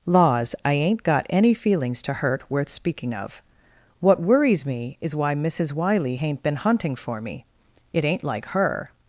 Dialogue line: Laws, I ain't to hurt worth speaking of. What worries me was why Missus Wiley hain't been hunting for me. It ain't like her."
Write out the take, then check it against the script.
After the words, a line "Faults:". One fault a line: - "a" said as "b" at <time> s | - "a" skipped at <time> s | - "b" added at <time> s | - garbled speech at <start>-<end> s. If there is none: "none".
Laws, I ain't got any feelings to hurt worth speaking of. What worries me is why Missus Wiley hain't been hunting for me. It ain't like her."
Faults:
- "got any feelings" added at 1.0 s
- "was" said as "is" at 5.0 s